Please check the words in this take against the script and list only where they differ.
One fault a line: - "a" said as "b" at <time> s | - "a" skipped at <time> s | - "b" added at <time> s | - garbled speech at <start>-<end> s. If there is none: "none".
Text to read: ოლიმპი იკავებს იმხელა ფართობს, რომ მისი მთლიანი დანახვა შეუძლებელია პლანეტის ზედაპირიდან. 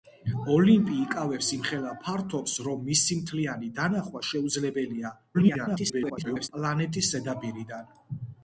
- garbled speech at 5.3-6.5 s